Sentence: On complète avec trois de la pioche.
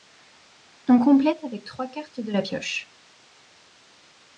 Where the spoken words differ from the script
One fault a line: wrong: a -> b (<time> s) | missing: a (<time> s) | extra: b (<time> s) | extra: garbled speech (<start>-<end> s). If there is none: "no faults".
extra: cartes (1.9 s)